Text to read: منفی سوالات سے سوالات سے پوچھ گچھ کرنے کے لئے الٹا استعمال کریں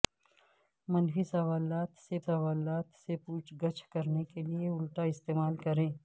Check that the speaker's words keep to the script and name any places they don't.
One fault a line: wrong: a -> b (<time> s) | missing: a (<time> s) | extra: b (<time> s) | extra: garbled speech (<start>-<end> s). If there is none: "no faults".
no faults